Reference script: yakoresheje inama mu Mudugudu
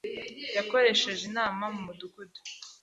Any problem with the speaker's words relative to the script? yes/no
no